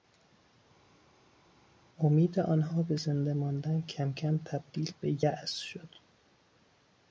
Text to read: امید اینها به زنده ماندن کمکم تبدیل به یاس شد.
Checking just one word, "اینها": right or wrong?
wrong